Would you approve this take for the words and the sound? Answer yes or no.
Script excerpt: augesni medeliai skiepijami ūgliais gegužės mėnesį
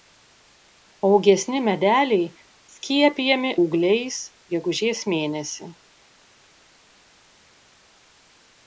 yes